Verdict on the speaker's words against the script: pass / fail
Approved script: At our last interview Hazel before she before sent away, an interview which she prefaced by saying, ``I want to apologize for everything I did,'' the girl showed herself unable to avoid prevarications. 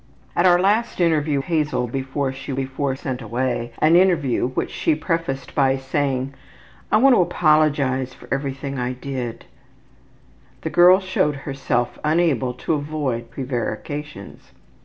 pass